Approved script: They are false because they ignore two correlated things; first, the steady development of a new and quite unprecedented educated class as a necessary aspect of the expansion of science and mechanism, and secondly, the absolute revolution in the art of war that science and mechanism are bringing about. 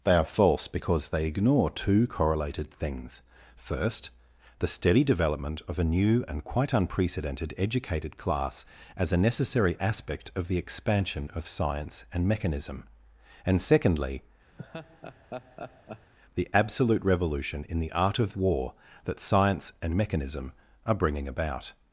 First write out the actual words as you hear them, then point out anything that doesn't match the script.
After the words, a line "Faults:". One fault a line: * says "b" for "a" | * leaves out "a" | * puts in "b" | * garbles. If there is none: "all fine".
They are false because they ignore two correlated things; first, the steady development of a new and quite unprecedented educated class as a necessary aspect of the expansion of science and mechanism, and secondly, the absolute revolution in the art of war that science and mechanism are bringing about.
Faults:
all fine